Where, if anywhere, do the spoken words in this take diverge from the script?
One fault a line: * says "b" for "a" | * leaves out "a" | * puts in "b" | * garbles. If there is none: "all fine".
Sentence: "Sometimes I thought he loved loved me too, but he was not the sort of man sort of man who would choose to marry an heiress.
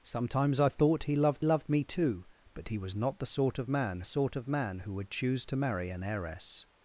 all fine